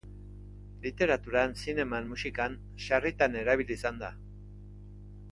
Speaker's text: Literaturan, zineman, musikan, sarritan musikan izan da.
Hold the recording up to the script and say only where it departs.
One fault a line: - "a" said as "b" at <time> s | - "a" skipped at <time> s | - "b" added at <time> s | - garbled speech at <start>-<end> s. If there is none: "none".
- "musikan" said as "erabili" at 3.4 s